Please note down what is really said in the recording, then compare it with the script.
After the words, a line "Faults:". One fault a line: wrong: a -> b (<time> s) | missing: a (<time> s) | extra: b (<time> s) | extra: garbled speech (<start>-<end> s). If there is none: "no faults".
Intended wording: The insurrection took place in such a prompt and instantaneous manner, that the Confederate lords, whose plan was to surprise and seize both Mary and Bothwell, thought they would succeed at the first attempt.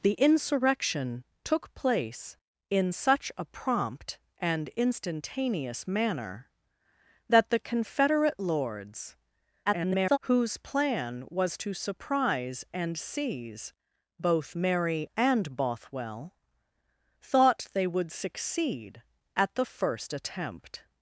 The insurrection took place in such a prompt and instantaneous manner, that the Confederate lords, [garbled] whose plan was to surprise and seize both Mary and Bothwell, thought they would succeed at the first attempt.
Faults:
extra: garbled speech (9.7-10.2 s)